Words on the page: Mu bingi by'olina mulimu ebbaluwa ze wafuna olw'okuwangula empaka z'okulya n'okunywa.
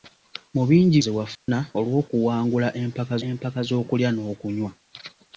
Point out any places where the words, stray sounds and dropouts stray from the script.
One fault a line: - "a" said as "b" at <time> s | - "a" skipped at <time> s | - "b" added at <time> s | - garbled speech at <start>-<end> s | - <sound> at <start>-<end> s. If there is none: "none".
- "by'olina mulimu ebbaluwa" skipped at 1.0 s
- dropout at 1.3-1.5 s
- "empaka" added at 3.3 s